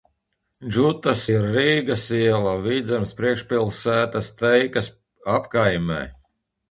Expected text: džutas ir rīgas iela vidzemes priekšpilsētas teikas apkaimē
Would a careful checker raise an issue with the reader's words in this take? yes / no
no